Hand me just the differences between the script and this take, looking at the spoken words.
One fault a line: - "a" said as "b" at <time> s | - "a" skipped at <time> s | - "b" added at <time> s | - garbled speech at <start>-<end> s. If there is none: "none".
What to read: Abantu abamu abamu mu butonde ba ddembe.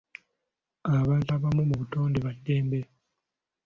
- "abamu" skipped at 1.6 s